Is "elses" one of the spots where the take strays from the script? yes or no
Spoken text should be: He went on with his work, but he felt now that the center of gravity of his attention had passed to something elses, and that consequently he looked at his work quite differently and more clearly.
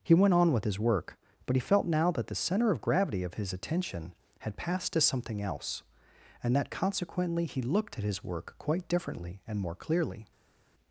yes